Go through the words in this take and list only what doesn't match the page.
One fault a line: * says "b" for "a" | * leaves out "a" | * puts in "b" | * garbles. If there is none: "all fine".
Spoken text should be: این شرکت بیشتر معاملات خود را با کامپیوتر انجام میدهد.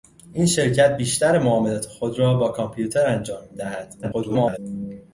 * garbles